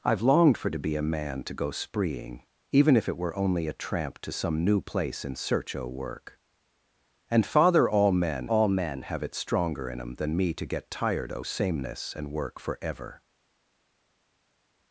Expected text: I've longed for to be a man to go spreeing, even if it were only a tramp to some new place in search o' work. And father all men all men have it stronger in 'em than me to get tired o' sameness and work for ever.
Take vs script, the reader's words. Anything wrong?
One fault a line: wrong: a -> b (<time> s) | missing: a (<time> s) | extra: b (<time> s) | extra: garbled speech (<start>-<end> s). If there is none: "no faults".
no faults